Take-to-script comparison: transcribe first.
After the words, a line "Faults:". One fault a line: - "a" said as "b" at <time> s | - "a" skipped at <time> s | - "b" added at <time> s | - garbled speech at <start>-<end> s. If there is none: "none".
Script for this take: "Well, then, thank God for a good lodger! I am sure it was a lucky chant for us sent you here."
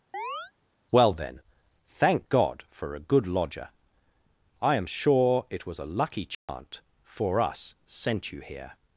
"Well, then, thank God for a good lodger! I am sure it was a lucky chant for us sent you here."
Faults:
none